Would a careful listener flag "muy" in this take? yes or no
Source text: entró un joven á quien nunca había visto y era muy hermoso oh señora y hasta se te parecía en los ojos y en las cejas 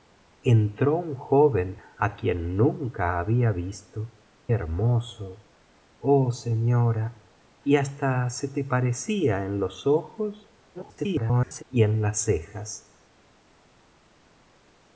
yes